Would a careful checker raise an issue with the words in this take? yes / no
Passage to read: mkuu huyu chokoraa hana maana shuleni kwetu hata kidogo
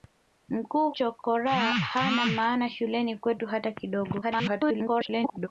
yes